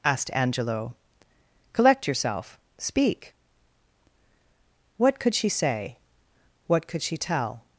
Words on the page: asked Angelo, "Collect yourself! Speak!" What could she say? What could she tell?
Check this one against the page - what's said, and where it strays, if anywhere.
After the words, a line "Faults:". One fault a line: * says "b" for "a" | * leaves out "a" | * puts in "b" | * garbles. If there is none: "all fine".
asked Angelo, "Collect yourself! Speak!" What could she say? What could she tell?
Faults:
all fine